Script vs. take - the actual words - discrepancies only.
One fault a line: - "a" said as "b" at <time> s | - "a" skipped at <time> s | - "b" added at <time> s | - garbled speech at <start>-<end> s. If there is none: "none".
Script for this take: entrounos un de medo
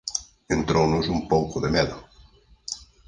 - "pouco" added at 1.3 s